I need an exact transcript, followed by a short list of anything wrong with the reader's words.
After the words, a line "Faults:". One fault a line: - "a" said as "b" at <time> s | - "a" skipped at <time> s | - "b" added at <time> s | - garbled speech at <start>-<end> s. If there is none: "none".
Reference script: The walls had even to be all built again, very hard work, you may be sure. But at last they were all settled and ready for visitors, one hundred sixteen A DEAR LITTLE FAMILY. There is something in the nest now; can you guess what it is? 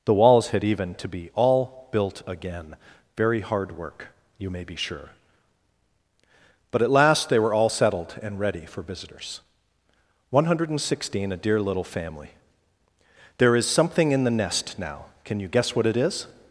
The walls had even to be all built again, very hard work, you may be sure. But at last they were all settled and ready for visitors, one hundred sixteen A DEAR LITTLE FAMILY. There is something in the nest now; can you guess what it is?
Faults:
none